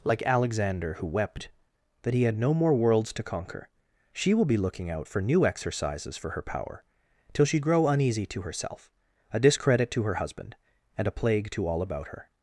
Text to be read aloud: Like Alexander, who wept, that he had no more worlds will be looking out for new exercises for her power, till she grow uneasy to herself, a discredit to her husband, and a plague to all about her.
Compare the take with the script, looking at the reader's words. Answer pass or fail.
fail